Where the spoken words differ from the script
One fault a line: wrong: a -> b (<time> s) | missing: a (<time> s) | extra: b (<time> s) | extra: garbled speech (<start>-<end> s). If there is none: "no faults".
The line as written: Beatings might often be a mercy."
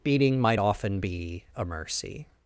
wrong: Beatings -> Beating (0.0 s)